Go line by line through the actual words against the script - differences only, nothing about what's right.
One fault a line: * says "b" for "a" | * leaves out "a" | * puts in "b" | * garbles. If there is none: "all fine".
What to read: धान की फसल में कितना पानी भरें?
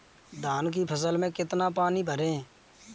all fine